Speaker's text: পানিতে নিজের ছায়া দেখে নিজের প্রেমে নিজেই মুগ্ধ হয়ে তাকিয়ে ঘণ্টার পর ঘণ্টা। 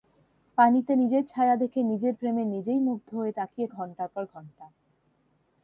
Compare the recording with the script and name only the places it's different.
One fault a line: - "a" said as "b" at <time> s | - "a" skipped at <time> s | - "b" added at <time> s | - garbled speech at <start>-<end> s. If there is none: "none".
none